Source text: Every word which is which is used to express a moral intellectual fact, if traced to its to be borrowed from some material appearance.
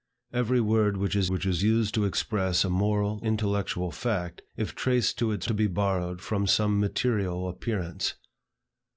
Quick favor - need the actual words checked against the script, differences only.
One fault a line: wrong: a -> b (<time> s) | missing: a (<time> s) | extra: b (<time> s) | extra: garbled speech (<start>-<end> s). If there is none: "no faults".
no faults